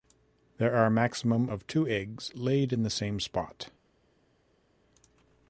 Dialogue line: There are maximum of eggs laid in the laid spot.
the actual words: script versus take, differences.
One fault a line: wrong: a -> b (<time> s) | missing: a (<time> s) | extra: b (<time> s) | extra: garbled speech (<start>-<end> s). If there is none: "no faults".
extra: two (1.7 s)
wrong: laid -> same (2.9 s)